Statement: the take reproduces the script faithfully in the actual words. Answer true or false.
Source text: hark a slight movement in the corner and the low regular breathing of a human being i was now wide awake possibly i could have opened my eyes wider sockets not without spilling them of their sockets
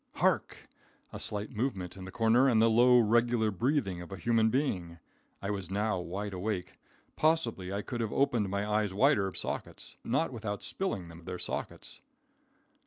true